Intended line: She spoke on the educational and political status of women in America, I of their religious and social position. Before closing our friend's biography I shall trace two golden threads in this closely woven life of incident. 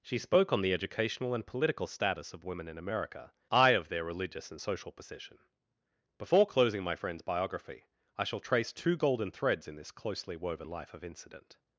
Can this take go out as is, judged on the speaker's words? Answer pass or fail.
fail